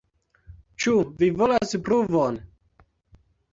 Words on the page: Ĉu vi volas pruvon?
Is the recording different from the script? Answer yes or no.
no